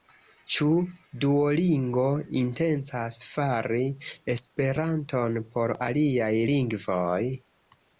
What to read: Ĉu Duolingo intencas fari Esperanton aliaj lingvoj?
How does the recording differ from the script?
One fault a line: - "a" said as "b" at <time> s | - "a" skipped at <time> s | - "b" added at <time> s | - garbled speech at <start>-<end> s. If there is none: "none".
- "por" added at 5.5 s